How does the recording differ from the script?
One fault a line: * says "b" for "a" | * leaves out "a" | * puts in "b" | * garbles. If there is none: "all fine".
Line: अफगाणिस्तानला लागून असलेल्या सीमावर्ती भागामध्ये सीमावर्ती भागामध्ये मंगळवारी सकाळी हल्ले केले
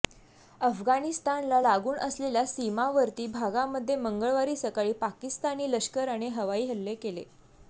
* says "मंगळवारी सकाळी पाकिस्तानी लष्कराने हवाई" for "सीमावर्ती भागामध्ये मंगळवारी सकाळी"